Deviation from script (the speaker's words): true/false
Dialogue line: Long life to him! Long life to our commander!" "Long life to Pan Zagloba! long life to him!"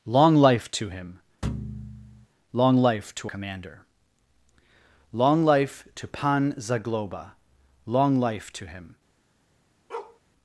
true